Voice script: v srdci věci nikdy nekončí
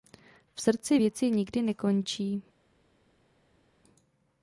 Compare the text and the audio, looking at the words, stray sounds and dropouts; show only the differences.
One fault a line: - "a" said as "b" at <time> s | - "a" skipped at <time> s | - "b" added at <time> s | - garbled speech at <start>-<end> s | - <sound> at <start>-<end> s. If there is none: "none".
none